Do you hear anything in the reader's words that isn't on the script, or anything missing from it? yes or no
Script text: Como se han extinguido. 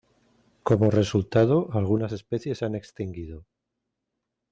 yes